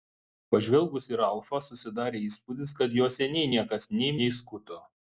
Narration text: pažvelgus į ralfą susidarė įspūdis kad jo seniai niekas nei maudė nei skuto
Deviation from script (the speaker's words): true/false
true